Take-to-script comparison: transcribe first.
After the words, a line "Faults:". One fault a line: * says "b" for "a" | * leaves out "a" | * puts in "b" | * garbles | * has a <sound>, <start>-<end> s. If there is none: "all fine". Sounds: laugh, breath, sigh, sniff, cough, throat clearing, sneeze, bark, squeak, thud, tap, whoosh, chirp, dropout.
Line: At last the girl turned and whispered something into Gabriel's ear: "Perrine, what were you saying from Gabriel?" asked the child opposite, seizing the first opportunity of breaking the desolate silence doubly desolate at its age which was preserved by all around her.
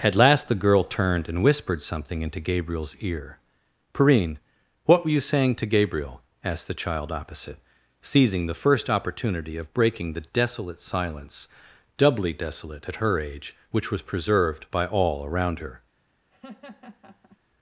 At last the girl turned and whispered something into Gabriel's ear: "Perrine, what were you saying to Gabriel?" asked the child opposite, seizing the first opportunity of breaking the desolate silence doubly desolate at her age which was preserved by all around her.
Faults:
* says "to" for "from"
* says "her" for "its"
* has a laugh, 16.3-17.4 s